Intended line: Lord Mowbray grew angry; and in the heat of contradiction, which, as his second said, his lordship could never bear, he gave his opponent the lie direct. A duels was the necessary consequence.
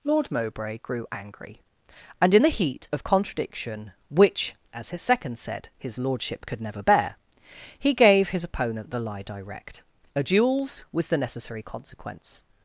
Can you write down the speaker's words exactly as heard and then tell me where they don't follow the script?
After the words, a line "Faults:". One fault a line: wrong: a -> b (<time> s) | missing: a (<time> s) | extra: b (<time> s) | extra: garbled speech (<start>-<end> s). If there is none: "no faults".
Lord Mowbray grew angry; and in the heat of contradiction, which, as his second said, his lordship could never bear, he gave his opponent the lie direct. A duels was the necessary consequence.
Faults:
no faults